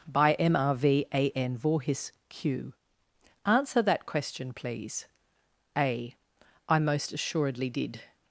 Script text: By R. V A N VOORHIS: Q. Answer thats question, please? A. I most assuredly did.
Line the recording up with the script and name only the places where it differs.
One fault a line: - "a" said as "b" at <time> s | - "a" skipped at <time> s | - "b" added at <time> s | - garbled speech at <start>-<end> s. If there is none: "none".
- "M" added at 0.3 s
- "thats" said as "that" at 3.8 s